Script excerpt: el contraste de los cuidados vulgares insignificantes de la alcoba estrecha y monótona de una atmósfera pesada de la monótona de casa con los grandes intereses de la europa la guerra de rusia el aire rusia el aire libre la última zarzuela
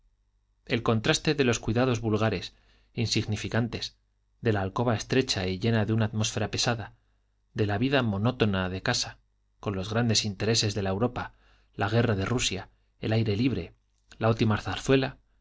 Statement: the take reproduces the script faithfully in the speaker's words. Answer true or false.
false